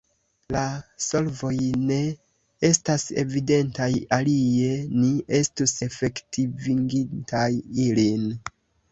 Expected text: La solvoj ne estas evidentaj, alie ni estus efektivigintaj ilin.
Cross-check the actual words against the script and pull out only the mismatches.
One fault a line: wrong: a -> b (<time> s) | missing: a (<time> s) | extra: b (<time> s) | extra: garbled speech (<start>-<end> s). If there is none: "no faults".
no faults